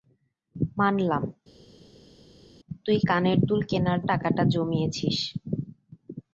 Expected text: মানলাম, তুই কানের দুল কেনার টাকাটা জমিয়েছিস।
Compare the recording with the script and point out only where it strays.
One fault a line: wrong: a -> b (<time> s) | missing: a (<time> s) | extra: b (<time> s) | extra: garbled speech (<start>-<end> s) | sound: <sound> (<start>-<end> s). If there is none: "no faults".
no faults